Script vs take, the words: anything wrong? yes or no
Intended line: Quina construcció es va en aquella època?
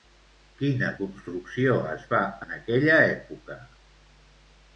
no